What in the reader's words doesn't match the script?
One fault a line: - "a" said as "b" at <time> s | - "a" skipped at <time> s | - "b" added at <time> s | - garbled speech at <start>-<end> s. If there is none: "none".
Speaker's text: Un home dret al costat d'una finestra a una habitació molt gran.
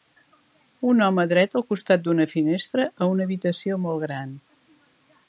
none